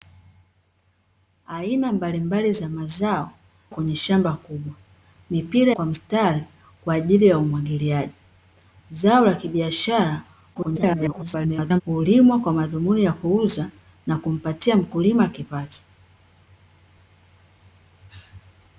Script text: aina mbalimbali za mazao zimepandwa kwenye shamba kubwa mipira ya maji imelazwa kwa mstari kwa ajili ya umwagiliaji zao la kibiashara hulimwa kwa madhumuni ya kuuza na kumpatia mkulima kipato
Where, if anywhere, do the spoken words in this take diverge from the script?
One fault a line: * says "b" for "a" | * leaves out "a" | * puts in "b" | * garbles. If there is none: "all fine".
* leaves out "zimepandwa"
* leaves out "ya maji imelazwa"
* garbles